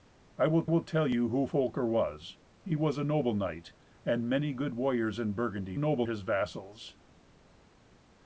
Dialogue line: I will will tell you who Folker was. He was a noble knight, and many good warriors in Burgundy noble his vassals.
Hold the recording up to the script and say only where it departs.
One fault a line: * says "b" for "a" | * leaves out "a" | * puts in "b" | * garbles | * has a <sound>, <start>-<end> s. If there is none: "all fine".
all fine